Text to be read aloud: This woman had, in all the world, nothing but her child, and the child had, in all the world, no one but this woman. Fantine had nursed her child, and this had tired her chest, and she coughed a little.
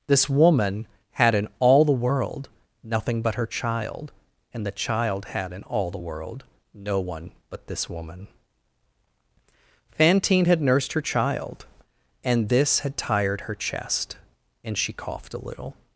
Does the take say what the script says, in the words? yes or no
yes